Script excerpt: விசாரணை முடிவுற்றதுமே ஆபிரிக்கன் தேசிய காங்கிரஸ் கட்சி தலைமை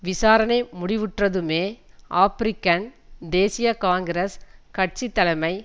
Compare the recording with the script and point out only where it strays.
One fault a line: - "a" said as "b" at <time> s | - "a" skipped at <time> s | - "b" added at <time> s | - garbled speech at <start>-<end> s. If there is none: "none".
none